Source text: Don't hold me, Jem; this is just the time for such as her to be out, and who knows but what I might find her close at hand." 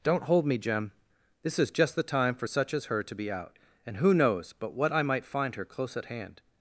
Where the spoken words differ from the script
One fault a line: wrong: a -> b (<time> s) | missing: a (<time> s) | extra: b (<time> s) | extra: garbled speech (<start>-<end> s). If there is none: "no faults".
no faults